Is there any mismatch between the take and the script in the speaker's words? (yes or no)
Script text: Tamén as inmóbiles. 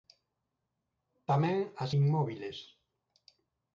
no